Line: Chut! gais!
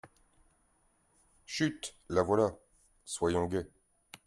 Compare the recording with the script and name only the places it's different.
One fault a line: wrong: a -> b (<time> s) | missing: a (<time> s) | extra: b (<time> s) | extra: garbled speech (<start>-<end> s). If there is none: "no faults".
extra: la voilà soyons (2.1 s)